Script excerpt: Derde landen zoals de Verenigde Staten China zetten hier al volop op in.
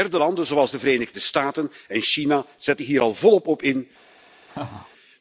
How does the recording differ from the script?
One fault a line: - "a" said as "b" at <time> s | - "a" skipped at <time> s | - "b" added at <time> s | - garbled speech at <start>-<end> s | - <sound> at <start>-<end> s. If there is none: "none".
- "en" added at 1.9 s
- laugh at 4.5-4.9 s